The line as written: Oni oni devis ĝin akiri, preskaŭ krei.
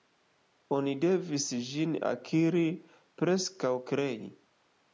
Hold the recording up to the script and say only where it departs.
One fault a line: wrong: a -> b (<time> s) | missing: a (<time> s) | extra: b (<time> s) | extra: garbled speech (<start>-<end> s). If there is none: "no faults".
missing: oni (0.9 s)